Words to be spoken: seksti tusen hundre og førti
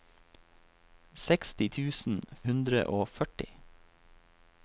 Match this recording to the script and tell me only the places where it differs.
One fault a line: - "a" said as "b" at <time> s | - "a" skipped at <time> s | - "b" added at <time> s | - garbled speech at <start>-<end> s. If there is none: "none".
none